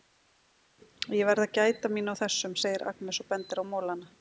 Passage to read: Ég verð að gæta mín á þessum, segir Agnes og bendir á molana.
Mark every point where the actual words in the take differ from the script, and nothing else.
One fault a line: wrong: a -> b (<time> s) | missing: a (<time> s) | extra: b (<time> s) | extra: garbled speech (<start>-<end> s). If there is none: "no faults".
no faults